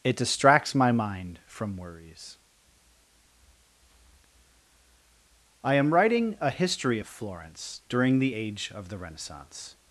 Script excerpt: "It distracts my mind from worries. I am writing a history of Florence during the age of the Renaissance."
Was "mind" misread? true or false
false